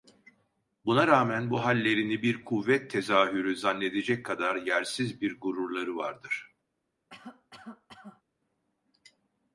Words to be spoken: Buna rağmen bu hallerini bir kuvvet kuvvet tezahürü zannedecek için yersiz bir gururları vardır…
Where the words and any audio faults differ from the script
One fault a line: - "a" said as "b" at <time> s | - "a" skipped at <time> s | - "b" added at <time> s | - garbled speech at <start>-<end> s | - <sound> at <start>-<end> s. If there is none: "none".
- "kuvvet" skipped at 2.9 s
- "için" said as "kadar" at 4.3 s
- cough at 7.1-8.2 s